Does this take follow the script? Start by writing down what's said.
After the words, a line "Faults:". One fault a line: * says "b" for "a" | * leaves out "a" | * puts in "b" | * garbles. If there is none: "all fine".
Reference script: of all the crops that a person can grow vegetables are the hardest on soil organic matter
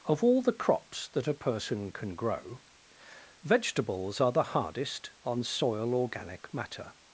of all the crops that a person can grow vegetables are the hardest on soil organic matter
Faults:
all fine